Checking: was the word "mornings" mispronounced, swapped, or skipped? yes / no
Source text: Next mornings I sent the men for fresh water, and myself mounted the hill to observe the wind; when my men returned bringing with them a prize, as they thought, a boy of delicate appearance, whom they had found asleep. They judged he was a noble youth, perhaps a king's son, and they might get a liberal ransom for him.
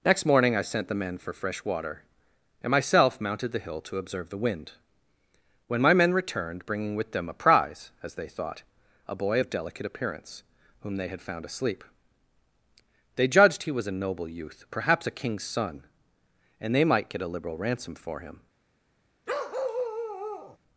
yes